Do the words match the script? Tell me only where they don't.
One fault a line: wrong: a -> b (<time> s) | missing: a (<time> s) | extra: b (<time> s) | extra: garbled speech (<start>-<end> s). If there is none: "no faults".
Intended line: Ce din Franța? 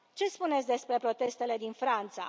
extra: spuneți despre protestele (0.3 s)